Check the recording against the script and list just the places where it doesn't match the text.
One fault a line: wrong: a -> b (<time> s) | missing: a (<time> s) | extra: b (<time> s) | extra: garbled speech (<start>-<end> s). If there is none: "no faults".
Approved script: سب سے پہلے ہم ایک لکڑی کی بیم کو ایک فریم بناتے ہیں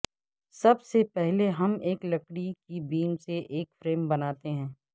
wrong: کو -> سے (3.2 s)